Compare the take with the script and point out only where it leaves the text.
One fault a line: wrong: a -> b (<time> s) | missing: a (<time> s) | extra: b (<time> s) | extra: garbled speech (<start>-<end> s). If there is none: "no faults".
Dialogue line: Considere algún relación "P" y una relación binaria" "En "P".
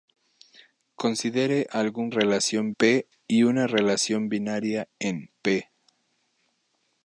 no faults